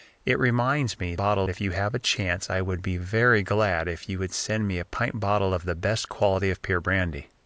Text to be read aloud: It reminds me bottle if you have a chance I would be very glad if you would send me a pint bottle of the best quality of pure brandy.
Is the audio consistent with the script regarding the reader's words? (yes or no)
yes